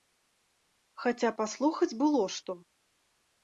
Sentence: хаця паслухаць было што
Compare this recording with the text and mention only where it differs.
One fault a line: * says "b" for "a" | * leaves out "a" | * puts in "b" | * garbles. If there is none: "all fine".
all fine